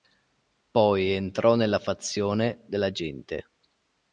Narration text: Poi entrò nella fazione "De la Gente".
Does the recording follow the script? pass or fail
pass